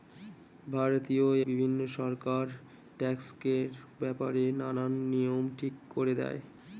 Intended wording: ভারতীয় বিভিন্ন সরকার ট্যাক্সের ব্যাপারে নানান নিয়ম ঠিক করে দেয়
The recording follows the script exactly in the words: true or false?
true